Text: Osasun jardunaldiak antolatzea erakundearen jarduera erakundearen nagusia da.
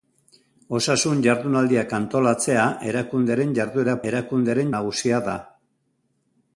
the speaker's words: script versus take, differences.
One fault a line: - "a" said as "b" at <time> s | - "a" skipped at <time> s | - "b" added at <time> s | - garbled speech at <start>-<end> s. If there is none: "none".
none